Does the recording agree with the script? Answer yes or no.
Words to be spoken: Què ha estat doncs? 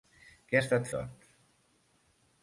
yes